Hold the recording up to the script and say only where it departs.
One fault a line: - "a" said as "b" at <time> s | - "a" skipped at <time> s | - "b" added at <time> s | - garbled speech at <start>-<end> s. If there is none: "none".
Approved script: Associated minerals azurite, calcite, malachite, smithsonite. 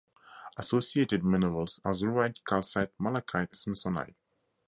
none